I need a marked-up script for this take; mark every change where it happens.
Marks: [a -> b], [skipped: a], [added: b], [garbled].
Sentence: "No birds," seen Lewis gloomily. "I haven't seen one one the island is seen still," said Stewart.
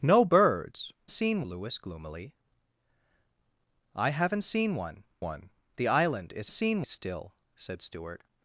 "No birds," seen Lewis gloomily. "I haven't seen one one the island is seen still," said Stewart.